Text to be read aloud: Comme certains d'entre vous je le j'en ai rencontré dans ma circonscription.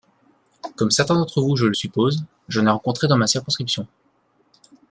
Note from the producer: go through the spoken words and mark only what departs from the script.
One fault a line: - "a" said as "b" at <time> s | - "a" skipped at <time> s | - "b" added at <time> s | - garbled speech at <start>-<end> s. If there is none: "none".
- "suppose" added at 1.7 s